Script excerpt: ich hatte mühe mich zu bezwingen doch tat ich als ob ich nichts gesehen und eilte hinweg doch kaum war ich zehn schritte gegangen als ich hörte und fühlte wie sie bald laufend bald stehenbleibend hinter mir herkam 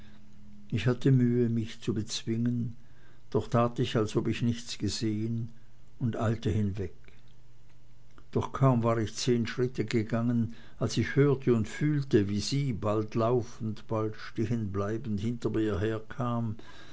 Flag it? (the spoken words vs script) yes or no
no